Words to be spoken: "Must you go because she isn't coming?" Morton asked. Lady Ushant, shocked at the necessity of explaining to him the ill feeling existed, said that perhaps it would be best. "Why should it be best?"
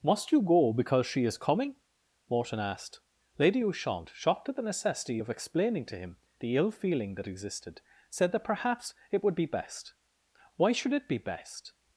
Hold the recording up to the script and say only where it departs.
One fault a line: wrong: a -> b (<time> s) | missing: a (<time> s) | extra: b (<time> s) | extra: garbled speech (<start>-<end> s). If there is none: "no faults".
wrong: isn't -> is (1.2 s)
extra: that (7.2 s)